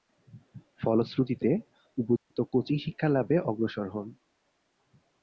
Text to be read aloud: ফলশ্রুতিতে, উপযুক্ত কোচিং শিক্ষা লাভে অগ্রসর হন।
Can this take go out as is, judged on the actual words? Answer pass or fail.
pass